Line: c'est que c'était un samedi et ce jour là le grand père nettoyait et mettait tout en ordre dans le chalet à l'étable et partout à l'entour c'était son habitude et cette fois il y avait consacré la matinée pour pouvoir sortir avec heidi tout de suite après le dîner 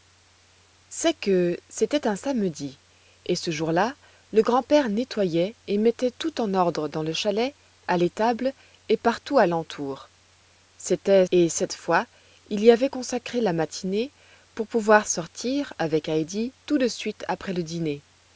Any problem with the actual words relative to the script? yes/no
yes